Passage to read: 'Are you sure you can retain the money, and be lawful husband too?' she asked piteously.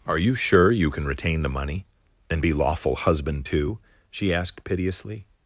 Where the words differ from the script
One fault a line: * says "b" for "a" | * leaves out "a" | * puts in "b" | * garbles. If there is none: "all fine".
all fine